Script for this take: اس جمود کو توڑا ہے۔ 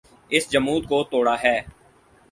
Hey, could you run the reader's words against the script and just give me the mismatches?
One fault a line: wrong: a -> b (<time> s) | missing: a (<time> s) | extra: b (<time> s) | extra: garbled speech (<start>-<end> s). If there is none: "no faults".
no faults